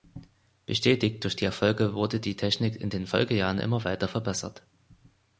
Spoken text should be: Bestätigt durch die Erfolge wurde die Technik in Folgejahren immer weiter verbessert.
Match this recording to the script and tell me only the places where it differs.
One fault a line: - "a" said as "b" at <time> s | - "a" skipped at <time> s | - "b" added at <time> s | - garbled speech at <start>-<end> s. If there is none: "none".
- "den" added at 2.9 s